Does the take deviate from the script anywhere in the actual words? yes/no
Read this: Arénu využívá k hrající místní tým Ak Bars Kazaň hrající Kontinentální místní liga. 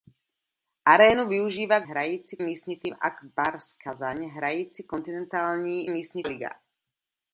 no